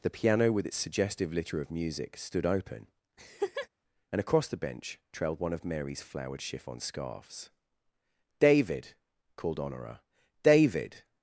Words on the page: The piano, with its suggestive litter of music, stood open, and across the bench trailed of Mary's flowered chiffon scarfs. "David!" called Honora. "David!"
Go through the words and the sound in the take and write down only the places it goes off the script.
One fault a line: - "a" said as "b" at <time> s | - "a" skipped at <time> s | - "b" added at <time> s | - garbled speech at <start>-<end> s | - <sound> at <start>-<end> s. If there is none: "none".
- laugh at 3.2-3.7 s
- "one" added at 5.4 s